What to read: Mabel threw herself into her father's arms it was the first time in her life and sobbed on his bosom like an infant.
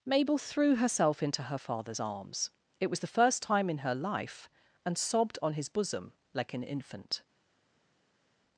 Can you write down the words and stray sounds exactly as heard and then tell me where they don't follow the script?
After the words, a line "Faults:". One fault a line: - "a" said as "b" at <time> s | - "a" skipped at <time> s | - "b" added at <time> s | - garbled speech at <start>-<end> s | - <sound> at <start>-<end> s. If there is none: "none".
Mabel threw herself into her father's arms it was the first time in her life and sobbed on his bosom like an infant.
Faults:
none